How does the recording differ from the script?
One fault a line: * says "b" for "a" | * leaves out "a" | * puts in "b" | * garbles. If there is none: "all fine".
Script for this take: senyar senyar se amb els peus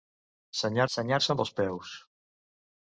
all fine